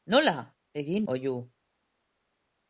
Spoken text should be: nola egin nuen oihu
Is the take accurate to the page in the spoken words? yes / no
no